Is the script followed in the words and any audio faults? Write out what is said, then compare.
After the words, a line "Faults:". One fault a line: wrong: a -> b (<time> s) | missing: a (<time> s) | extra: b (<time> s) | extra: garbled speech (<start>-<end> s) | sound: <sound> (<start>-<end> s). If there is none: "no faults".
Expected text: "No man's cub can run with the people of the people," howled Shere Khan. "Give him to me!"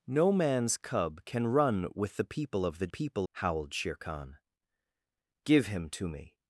"No man's cub can run with the people of the people," howled Shere Khan. "Give him to me!"
Faults:
no faults